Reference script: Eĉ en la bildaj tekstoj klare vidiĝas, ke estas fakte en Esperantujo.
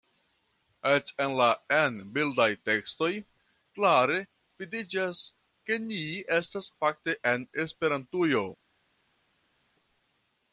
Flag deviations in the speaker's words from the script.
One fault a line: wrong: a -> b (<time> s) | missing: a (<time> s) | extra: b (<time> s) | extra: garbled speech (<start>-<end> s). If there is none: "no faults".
extra: en (1.8 s)
extra: ni (5.9 s)